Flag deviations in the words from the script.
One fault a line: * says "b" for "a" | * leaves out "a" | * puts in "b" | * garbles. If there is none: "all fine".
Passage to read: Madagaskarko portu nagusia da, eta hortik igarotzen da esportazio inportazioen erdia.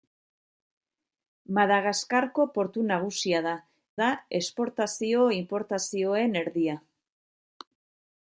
* leaves out "eta hortik igarotzen"